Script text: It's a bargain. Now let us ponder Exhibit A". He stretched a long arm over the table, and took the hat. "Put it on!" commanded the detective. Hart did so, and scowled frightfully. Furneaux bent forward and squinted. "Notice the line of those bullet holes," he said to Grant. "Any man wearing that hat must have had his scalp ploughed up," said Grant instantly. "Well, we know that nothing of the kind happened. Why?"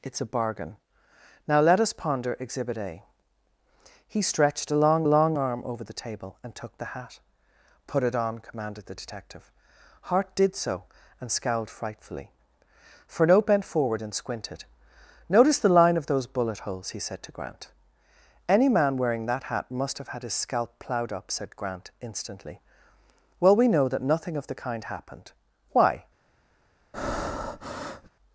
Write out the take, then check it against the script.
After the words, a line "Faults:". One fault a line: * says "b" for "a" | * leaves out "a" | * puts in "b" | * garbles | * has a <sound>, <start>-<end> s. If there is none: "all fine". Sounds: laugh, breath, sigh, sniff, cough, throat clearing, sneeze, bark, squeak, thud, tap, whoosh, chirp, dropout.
It's a bargain. Now let us ponder Exhibit A". He stretched a long long arm over the table, and took the hat. "Put it on!" commanded the detective. Hart did so, and scowled frightfully. Furneaux bent forward and squinted. "Notice the line of those bullet holes," he said to Grant. "Any man wearing that hat must have had his scalp ploughed up," said Grant instantly. "Well, we know that nothing of the kind happened. Why?"
Faults:
* puts in "long"
* has a breath, 26.9-28.1 s